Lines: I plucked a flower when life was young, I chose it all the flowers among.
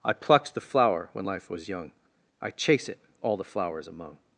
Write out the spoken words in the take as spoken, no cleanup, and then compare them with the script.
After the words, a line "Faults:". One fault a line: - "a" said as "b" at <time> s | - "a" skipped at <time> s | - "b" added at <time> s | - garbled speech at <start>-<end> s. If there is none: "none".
I plucked the flower when life was young, I chase it all the flowers among.
Faults:
- "a" said as "the" at 0.6 s
- "chose" said as "chase" at 2.5 s